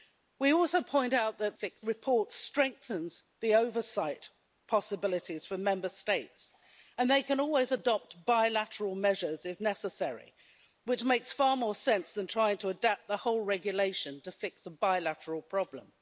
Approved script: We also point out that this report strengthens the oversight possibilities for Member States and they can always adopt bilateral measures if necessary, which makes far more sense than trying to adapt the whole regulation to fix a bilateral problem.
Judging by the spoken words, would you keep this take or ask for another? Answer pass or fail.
fail